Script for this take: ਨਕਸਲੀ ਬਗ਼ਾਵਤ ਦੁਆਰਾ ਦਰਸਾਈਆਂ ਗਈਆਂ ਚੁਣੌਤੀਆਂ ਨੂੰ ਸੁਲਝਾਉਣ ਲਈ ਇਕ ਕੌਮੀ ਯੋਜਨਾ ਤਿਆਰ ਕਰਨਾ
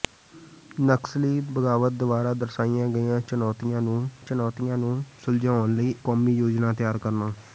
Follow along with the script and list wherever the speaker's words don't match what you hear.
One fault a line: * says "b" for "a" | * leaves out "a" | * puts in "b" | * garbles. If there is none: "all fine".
* puts in "ਚੁਣੌਤੀਆਂ ਨੂੰ"
* leaves out "ਇਕ"